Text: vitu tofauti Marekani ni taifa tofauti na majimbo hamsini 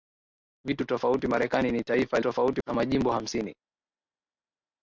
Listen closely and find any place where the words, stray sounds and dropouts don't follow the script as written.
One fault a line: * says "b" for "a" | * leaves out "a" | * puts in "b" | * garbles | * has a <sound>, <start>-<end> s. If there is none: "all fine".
all fine